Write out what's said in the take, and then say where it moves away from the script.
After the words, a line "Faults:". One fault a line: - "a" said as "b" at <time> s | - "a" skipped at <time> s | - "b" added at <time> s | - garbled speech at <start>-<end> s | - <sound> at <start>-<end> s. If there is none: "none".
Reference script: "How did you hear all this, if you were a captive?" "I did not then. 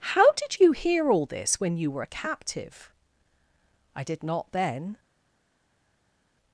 "How did you hear all this, when you were a captive?" "I did not then.
Faults:
- "if" said as "when" at 1.6 s